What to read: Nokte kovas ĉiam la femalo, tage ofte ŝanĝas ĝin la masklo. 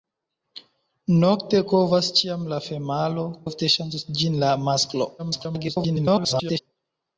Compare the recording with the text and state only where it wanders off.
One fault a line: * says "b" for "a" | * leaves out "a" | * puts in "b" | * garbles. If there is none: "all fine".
* leaves out "tage"
* garbles